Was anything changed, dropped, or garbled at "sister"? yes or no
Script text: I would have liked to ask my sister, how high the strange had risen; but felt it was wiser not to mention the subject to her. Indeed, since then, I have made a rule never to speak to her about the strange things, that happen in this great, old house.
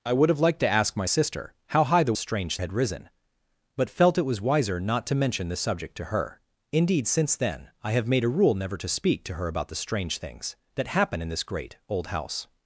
no